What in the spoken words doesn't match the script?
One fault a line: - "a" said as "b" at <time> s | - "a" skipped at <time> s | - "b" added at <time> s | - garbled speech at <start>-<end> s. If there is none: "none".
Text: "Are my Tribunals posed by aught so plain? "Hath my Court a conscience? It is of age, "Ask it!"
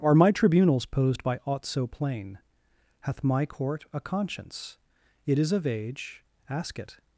none